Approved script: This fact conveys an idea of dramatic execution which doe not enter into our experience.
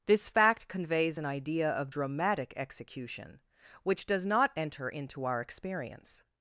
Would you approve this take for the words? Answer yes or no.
no